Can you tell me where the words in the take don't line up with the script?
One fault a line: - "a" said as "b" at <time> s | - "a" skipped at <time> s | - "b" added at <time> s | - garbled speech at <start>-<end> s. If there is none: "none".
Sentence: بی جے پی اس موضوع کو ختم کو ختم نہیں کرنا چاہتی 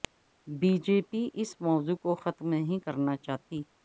- "کو ختم" skipped at 2.5 s